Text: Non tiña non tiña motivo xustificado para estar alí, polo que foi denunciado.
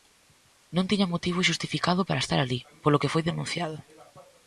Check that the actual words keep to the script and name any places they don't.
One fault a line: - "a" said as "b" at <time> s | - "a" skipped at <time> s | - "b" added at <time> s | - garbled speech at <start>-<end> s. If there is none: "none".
- "non tiña" skipped at 1.1 s